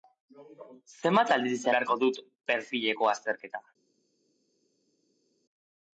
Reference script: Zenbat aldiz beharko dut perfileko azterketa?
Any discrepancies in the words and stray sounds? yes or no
no